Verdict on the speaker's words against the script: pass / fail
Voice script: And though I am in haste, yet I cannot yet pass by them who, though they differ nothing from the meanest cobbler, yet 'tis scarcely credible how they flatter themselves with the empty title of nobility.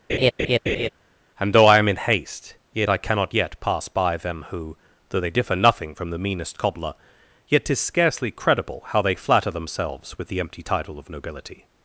pass